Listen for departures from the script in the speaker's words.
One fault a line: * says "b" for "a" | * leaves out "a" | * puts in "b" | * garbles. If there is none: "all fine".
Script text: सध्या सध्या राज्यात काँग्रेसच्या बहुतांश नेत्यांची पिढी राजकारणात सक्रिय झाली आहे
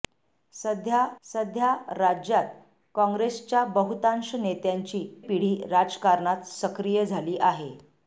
all fine